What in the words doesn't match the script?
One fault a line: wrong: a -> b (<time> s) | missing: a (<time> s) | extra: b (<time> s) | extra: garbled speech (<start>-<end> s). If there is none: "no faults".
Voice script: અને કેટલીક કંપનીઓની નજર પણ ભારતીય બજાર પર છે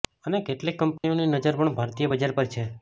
no faults